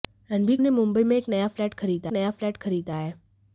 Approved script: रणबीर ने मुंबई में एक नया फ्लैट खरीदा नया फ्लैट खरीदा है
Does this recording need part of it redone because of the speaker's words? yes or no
no